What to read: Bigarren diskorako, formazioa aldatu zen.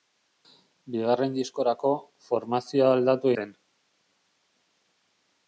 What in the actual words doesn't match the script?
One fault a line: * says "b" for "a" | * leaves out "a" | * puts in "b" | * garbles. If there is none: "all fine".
all fine